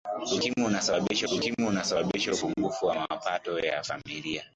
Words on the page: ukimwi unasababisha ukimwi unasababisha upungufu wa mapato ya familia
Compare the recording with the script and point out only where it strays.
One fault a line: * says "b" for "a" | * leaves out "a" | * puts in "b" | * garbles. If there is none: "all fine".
all fine